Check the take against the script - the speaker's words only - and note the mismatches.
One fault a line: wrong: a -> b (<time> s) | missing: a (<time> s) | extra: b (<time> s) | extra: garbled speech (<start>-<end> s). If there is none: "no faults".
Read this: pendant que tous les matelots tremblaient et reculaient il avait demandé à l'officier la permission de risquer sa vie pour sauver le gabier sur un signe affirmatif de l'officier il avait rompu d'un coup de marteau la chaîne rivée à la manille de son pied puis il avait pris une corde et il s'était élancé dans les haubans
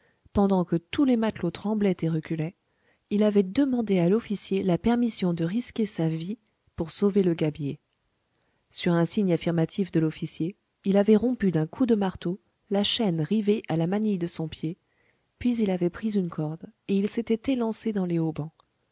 no faults